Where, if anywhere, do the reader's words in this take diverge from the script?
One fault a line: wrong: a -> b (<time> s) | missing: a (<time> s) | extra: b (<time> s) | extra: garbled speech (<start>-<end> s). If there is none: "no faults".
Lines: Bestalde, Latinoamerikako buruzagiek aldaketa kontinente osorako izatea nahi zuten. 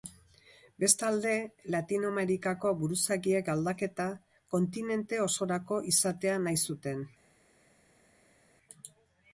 no faults